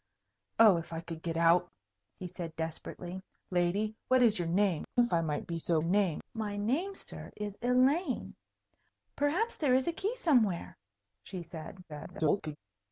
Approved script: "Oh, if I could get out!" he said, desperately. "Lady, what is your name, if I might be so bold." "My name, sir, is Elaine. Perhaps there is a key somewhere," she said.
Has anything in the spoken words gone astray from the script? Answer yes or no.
yes